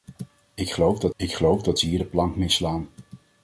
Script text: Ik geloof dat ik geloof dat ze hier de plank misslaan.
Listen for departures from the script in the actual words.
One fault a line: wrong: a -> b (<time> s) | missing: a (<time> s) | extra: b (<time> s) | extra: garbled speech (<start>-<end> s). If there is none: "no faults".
no faults